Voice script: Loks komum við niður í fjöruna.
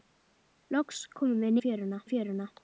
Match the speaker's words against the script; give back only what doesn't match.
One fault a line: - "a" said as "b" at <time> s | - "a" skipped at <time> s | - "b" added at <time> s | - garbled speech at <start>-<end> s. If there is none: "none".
- "niður" said as "fjöruna" at 1.6 s